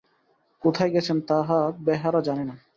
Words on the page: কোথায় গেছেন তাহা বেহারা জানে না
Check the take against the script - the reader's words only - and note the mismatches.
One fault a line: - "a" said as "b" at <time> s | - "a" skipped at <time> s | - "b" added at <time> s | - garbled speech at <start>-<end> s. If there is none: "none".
none